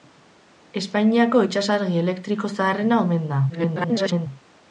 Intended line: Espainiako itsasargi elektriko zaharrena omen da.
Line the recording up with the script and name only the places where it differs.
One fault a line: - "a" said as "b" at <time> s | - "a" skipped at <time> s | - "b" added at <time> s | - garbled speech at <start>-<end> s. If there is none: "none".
- garbled speech at 3.5-4.3 s